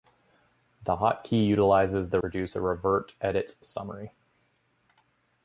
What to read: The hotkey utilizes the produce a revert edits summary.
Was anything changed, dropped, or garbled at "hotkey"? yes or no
no